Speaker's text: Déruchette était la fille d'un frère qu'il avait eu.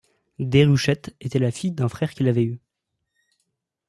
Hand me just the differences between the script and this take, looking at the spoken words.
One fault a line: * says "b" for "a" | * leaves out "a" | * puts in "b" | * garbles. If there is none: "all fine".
all fine